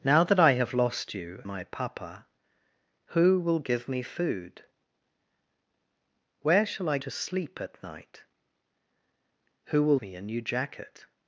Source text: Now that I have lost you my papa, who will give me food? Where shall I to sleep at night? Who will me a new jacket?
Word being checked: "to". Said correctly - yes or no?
yes